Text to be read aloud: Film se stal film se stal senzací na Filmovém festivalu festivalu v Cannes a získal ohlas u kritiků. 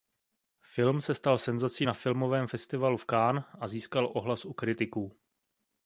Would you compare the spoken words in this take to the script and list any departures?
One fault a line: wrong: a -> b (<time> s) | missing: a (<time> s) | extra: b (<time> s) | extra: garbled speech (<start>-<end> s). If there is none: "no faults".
missing: film se stal (1.4 s)
missing: festivalu (3.0 s)